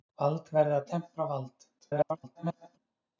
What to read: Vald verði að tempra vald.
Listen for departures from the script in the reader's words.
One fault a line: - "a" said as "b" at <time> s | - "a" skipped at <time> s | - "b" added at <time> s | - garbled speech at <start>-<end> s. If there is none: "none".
- garbled speech at 1.8-2.8 s